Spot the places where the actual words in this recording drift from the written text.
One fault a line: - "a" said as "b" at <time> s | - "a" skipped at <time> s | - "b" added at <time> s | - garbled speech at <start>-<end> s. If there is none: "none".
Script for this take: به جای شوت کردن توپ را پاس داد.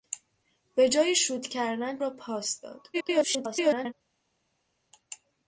- "توپ" skipped at 2.0 s
- garbled speech at 2.9-3.9 s